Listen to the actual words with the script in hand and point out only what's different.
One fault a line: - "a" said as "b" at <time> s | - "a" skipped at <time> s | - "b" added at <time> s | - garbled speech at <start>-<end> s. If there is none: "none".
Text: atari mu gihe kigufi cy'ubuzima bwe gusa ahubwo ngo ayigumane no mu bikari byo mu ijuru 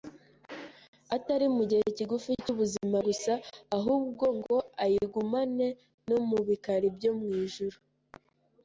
- "bwe" skipped at 3.0 s